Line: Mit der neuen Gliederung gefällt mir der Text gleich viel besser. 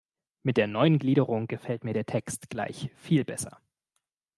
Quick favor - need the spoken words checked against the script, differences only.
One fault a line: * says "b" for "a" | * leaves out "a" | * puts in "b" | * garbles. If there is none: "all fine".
all fine